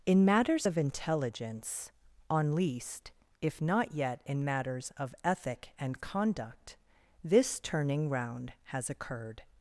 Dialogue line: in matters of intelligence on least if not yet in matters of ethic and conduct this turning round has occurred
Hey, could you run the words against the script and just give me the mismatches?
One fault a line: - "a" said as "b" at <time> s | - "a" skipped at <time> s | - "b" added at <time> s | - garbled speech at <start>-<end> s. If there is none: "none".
none